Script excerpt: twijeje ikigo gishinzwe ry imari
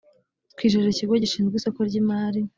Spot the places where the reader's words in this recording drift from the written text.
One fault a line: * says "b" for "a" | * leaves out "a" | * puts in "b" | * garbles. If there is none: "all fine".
* puts in "isoko"